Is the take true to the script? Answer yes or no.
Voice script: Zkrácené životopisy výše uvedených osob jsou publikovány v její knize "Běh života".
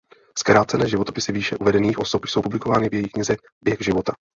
yes